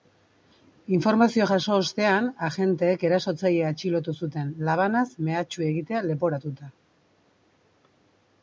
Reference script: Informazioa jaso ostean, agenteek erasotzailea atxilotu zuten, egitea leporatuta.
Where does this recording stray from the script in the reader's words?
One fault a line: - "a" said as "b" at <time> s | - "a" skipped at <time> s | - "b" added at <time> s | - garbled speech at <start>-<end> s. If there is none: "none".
- "labanaz mehatxu" added at 4.7 s